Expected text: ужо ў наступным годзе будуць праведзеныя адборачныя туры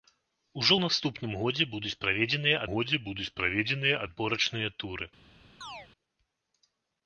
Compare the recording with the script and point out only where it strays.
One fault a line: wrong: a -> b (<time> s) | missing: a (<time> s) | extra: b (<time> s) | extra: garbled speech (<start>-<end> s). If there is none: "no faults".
extra: годзе будуць праведзеныя (2.7 s)